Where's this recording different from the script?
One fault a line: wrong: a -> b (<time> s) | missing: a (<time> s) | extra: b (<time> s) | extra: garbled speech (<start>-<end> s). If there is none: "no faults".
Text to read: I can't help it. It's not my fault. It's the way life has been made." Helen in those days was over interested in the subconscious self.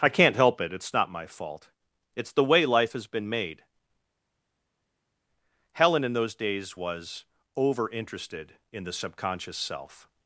no faults